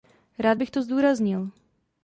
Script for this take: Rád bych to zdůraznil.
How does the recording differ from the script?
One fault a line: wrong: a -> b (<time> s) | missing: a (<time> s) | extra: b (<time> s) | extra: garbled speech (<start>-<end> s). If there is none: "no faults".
no faults